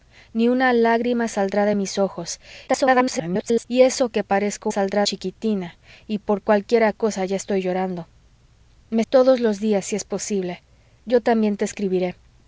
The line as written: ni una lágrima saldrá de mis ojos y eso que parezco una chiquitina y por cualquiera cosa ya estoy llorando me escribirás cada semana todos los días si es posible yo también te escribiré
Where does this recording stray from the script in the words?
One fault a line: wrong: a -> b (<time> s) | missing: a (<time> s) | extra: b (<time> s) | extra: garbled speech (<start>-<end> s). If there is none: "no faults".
extra: garbled speech (2.7-3.6 s)
wrong: una -> saldrá (4.7 s)
missing: escribirás cada semana (9.0 s)